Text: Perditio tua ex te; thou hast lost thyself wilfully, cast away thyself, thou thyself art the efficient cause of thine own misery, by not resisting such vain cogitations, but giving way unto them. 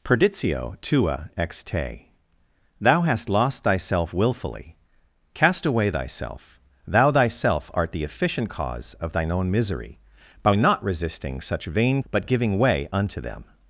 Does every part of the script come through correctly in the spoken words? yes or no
no